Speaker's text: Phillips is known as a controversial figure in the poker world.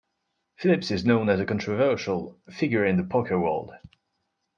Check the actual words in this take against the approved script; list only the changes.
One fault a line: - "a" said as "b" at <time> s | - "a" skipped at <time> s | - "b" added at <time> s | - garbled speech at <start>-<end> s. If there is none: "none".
none